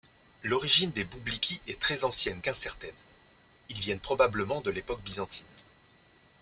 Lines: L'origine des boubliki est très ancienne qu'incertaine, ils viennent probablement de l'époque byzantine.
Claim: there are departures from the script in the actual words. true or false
false